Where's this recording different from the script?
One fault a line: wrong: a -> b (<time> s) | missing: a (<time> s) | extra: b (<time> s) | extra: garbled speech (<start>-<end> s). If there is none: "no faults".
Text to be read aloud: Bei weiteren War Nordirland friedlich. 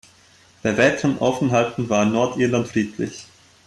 extra: Aufenthalten (1.2 s)